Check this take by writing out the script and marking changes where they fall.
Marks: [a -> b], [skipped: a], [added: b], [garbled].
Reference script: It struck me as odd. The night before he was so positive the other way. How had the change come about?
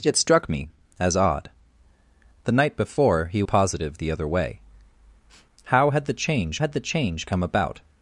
It struck me as odd. The night before he [skipped: was so] positive the other way. How had the change [added: had the change] come about?